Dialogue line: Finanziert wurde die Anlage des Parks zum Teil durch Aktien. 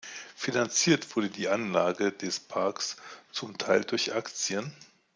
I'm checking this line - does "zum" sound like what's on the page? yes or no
yes